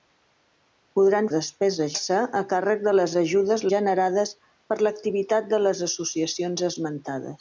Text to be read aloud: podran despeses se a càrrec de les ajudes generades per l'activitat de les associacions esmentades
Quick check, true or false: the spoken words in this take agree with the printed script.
true